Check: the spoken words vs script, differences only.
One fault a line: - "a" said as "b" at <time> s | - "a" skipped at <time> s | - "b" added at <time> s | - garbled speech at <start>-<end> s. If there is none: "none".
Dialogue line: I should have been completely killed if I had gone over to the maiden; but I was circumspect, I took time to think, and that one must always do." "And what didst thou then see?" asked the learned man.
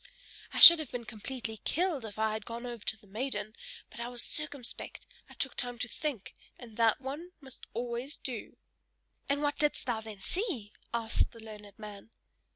none